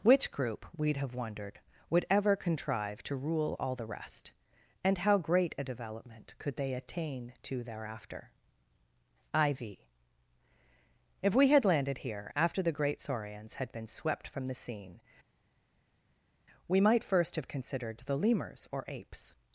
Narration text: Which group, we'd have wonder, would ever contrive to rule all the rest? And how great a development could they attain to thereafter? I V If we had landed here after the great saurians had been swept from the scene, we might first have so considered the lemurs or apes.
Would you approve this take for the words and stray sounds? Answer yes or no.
no